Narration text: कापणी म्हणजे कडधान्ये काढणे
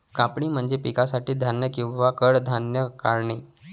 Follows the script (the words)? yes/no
no